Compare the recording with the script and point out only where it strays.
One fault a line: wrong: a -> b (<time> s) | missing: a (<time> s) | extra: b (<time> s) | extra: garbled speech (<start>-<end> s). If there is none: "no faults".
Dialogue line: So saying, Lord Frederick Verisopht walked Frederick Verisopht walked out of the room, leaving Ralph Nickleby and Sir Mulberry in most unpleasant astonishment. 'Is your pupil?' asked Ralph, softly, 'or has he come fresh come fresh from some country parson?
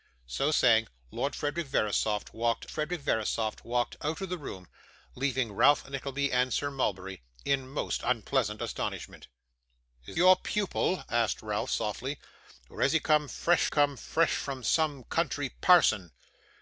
no faults